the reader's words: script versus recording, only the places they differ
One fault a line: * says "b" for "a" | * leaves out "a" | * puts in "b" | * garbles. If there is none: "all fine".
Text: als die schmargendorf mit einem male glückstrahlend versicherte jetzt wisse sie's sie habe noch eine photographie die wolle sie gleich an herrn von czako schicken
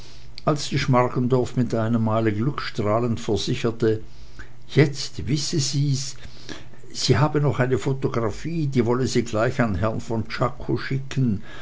all fine